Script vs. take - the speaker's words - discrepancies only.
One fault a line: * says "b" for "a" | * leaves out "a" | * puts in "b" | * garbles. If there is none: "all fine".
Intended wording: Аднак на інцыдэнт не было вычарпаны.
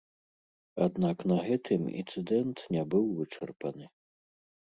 * puts in "гэтым"
* says "быў" for "было"